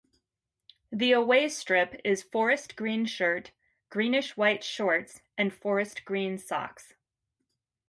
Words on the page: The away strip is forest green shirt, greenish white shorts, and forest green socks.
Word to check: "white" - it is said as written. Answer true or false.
true